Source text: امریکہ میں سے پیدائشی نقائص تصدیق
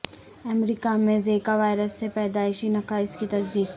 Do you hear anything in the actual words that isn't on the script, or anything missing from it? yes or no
yes